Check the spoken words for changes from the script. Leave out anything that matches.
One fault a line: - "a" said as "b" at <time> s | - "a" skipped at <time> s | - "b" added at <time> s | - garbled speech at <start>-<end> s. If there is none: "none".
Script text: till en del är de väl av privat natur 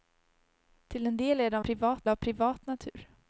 - "väl" said as "privat" at 1.6 s